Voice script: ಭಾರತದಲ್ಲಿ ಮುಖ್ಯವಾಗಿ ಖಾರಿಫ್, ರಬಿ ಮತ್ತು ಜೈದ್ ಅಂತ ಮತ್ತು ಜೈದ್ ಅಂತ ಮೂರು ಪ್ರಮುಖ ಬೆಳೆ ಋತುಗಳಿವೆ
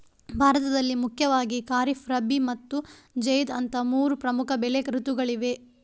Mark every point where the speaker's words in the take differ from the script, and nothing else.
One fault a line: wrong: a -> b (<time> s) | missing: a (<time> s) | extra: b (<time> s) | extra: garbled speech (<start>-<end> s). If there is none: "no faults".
missing: ಮತ್ತು ಜೈದ್ ಅಂತ (3.8 s)